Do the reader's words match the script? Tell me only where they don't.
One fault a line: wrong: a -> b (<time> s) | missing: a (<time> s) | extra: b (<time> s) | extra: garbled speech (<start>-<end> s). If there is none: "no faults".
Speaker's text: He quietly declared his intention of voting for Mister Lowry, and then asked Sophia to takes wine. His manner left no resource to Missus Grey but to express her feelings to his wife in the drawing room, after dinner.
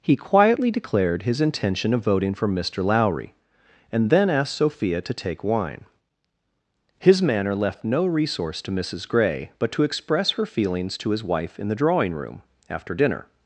wrong: takes -> take (5.1 s)